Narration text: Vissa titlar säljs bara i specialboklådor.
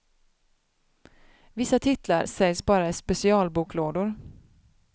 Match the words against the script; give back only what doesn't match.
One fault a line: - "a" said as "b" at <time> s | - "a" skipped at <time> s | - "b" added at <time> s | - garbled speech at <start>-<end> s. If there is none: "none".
none